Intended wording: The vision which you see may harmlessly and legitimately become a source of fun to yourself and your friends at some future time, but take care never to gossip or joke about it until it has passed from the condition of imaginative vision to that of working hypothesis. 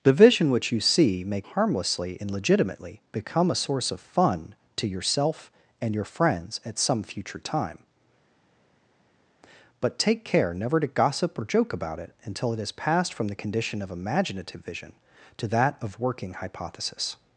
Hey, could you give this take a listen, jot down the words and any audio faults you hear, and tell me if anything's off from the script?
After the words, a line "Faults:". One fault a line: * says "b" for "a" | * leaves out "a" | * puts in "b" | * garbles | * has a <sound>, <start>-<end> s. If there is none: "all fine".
The vision which you see may harmlessly and legitimately become a source of fun to yourself and your friends at some future time, but take care never to gossip or joke about it until it has passed from the condition of imaginative vision to that of working hypothesis.
Faults:
all fine